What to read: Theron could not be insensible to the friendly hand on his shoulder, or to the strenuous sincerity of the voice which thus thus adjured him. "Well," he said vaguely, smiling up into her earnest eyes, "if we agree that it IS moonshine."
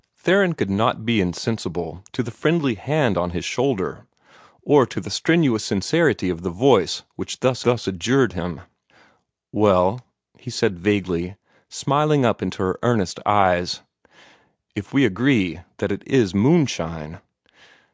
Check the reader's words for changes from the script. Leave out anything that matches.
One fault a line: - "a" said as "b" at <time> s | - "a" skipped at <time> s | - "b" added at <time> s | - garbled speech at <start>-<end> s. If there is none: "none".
none